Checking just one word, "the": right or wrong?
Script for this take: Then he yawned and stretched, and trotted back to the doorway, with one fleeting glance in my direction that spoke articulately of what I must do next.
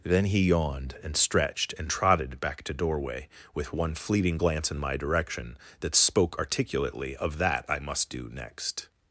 wrong